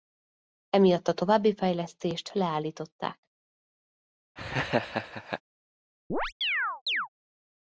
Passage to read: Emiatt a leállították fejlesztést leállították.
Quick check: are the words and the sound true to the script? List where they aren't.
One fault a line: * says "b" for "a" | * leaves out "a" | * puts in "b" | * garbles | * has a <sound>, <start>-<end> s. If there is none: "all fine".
* says "további" for "leállították"
* has a laugh, 4.4-5.4 s
* has a chirp, 6.1-7.1 s